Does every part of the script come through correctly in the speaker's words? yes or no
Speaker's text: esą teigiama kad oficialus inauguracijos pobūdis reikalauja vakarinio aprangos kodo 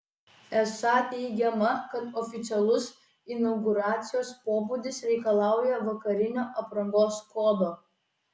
yes